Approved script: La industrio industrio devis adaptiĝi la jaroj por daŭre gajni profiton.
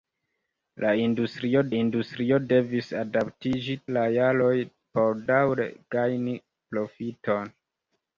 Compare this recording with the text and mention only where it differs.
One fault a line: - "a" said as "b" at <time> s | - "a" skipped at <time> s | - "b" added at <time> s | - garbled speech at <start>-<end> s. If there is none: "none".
none